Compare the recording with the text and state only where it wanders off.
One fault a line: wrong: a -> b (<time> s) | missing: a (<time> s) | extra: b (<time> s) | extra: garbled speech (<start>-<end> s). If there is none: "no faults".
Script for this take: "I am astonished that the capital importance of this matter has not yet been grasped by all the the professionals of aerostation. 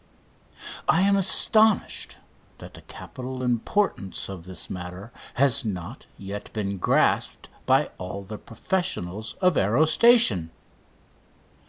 missing: the (8.4 s)